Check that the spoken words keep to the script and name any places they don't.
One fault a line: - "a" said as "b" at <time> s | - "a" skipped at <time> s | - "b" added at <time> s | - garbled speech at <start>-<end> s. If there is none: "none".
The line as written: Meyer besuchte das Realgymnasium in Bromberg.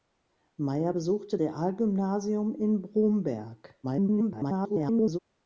- "das" skipped at 1.4 s
- garbled speech at 3.8-5.2 s